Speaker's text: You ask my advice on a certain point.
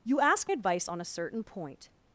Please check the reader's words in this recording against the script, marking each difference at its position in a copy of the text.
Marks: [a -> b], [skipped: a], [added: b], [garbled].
You ask [skipped: my] advice on a certain point.